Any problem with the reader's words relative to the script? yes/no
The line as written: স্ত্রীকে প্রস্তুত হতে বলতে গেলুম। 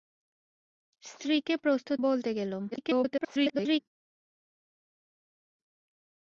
yes